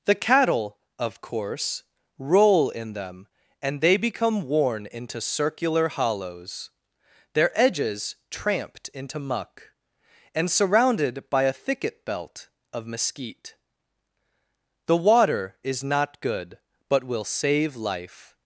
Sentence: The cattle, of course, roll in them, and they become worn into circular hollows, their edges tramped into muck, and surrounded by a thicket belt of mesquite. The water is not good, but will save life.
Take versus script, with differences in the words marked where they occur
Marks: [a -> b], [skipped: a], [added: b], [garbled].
The cattle, of course, roll in them, and they become worn into circular hollows, their edges tramped into muck, and surrounded by a thicket belt of mesquite. The water is not good, but will save life.